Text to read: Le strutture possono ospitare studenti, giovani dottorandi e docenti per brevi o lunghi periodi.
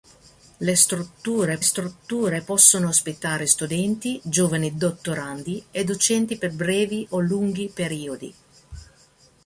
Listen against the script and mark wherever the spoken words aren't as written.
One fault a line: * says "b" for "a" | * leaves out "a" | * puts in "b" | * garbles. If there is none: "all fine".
* puts in "strutture"